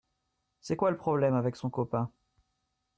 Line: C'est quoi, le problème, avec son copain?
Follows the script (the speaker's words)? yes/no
yes